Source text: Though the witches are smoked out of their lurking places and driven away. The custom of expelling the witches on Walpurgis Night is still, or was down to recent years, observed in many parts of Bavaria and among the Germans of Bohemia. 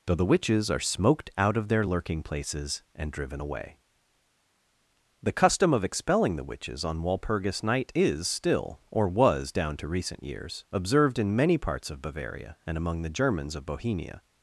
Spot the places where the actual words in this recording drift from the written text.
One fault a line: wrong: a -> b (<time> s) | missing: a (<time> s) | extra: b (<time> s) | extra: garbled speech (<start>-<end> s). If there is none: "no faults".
no faults